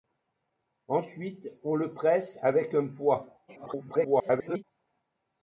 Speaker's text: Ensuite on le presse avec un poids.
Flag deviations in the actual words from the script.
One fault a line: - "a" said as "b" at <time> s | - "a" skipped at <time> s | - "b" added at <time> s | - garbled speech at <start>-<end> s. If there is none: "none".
- garbled speech at 3.5-4.6 s